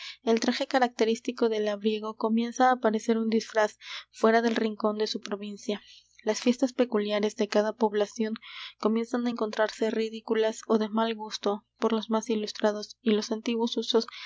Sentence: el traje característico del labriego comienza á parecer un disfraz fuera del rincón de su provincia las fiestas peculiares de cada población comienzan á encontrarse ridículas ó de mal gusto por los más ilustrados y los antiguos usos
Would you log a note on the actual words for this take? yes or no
no